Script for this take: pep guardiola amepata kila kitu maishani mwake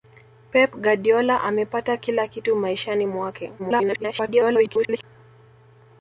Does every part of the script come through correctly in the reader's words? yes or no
no